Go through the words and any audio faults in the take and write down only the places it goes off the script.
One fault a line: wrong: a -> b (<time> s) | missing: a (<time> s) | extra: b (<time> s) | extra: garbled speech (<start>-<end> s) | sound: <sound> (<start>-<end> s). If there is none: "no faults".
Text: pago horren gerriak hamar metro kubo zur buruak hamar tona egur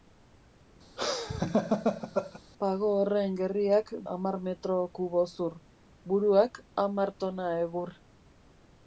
sound: laugh (1.0-2.4 s)